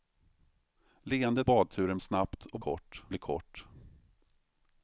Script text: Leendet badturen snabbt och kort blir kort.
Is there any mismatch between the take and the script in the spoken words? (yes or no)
no